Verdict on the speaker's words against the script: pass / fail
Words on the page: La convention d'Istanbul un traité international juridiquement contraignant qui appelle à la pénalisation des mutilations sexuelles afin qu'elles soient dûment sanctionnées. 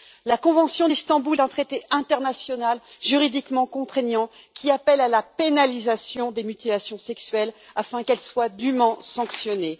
pass